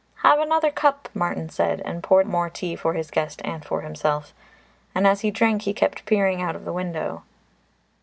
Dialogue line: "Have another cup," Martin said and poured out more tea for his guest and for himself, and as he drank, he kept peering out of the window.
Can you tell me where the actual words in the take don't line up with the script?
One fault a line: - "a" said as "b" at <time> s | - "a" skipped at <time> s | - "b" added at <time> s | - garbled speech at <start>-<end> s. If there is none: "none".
- "out" skipped at 2.2 s